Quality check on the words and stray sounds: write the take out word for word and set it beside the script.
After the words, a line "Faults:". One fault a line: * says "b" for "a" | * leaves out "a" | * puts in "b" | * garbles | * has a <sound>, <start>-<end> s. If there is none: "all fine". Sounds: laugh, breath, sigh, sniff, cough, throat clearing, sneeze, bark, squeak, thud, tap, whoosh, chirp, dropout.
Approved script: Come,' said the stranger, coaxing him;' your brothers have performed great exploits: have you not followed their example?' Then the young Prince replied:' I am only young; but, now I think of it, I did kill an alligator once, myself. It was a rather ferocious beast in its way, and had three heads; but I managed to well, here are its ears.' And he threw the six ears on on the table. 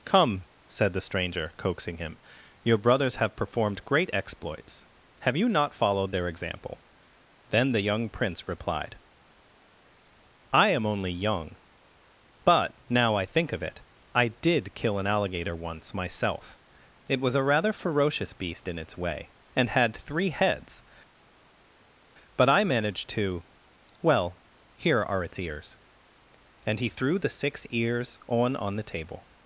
Come,' said the stranger, coaxing him;' your brothers have performed great exploits: have you not followed their example?' Then the young Prince replied:' I am only young; but, now I think of it, I did kill an alligator once, myself. It was a rather ferocious beast in its way, and had three heads; but I managed to well, here are its ears.' And he threw the six ears on on the table.
Faults:
all fine